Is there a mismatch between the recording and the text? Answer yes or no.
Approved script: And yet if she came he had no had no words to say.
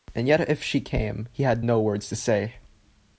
yes